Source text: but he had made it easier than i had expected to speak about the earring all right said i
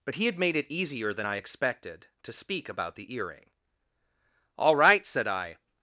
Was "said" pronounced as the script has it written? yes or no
yes